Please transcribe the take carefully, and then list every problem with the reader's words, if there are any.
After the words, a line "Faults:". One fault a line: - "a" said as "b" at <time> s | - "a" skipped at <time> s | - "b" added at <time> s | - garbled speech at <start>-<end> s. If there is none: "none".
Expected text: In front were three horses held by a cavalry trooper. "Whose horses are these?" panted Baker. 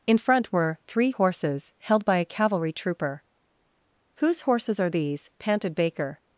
In front were three horses held by a cavalry trooper. "Whose horses are these?" panted Baker.
Faults:
none